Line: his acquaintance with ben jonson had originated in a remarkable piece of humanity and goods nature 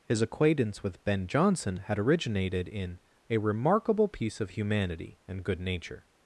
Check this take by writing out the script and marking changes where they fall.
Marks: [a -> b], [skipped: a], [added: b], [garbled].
his acquaintance with ben jonson had originated in a remarkable piece of humanity and [goods -> good] nature